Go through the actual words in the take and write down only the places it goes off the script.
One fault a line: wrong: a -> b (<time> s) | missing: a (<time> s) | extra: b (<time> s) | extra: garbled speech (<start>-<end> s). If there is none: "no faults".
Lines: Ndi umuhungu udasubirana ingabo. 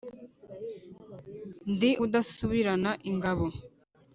missing: umuhungu (1.9 s)